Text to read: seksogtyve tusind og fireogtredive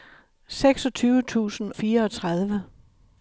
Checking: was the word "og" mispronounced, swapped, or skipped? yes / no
yes